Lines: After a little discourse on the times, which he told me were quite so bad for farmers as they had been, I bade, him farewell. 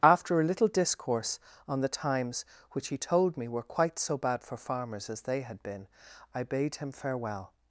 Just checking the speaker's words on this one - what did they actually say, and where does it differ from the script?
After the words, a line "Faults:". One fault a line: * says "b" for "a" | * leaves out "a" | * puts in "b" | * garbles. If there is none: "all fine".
After a little discourse on the times, which he told me were quite so bad for farmers as they had been, I bade, him farewell.
Faults:
all fine